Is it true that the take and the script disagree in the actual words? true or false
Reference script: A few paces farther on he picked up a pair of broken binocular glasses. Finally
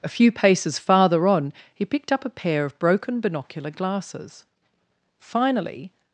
false